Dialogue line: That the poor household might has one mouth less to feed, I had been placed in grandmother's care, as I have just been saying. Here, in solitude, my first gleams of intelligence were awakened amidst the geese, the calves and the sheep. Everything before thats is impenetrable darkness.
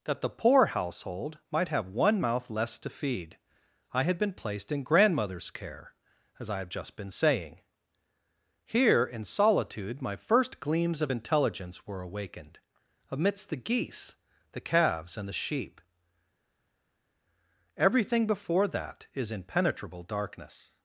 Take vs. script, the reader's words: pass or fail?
fail